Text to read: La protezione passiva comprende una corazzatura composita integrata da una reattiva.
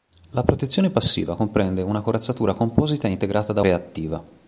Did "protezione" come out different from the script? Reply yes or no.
no